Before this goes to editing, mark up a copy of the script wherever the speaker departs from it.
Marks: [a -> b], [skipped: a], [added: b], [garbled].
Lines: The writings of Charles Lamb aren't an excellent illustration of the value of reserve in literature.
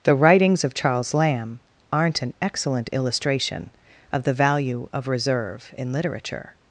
The writings of Charles Lamb aren't an excellent illustration of the value of reserve in literature.